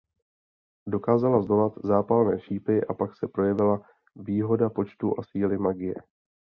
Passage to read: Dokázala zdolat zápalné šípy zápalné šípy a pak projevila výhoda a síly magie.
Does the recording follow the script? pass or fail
fail